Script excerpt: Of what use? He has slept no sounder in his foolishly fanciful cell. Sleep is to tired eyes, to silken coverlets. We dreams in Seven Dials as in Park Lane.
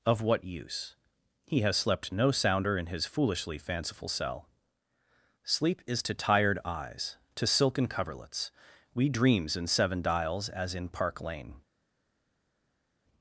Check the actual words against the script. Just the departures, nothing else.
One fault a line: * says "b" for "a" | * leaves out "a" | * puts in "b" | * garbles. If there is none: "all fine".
all fine